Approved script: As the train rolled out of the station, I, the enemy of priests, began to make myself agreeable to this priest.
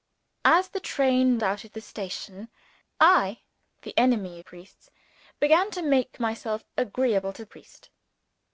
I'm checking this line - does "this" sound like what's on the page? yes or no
no